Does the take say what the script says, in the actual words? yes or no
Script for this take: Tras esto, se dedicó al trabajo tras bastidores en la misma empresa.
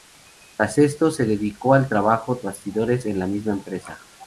no